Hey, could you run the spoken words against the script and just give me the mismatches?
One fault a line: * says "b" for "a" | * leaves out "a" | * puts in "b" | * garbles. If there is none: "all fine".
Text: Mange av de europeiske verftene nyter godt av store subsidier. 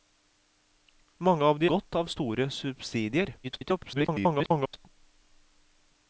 * leaves out "europeiske verftene nyter"
* garbles